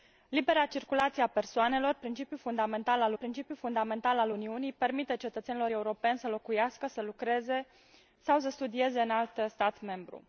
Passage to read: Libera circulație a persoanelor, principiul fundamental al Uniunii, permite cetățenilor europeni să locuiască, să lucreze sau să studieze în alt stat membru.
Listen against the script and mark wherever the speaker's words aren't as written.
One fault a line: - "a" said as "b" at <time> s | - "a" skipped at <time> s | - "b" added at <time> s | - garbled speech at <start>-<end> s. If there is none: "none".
- "principiul fundamental al" added at 3.1 s